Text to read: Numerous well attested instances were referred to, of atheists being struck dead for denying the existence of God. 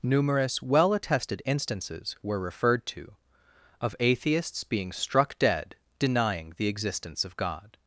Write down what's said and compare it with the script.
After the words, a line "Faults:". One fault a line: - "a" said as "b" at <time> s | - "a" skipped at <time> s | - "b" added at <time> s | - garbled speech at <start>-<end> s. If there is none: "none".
Numerous well attested instances were referred to, of atheists being struck dead denying the existence of God.
Faults:
- "for" skipped at 5.8 s